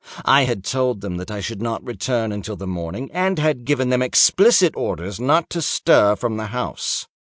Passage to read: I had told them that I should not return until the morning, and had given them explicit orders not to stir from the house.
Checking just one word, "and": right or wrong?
right